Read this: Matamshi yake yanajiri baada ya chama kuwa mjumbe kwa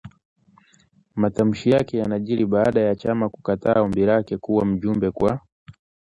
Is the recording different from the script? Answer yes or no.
yes